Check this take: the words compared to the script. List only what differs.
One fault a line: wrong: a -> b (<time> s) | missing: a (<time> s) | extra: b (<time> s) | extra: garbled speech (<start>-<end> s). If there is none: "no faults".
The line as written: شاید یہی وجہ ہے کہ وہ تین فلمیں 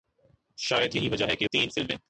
missing: وہ (1.5 s)